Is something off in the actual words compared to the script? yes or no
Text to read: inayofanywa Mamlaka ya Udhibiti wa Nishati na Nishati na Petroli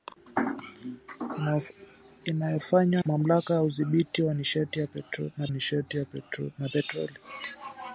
no